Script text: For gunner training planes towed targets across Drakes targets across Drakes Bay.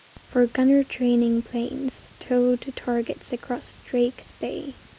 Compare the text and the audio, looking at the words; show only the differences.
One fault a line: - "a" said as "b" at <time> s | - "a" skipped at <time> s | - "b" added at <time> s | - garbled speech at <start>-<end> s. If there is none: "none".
- "targets across Drakes" skipped at 4.3 s